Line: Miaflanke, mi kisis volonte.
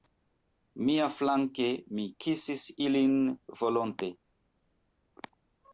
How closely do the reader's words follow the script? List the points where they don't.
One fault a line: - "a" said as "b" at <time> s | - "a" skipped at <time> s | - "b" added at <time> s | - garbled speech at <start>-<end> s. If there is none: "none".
- "ilin" added at 2.9 s